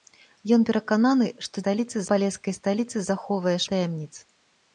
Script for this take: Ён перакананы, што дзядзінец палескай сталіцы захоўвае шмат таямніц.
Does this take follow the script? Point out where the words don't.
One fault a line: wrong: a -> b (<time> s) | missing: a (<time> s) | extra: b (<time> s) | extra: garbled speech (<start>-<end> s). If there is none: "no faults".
wrong: дзядзінец -> сталіцы (1.6 s)
missing: шмат (3.6 s)